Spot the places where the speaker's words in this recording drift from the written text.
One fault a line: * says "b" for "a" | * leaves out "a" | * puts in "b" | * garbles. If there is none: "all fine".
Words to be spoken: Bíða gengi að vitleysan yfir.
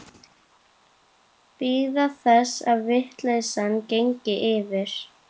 * says "þess" for "gengi"
* puts in "gengi"